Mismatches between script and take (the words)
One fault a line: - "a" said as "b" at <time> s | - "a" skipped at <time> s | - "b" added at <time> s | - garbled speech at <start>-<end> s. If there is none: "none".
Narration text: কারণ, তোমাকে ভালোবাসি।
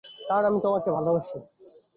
- "আমি" added at 0.5 s